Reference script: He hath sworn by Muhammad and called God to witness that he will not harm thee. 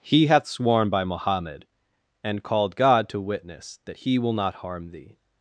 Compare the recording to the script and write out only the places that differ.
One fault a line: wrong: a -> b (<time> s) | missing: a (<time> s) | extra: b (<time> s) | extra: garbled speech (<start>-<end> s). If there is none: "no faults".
no faults